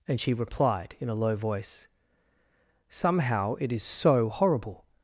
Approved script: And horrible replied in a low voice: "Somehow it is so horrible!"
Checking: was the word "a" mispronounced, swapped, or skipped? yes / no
no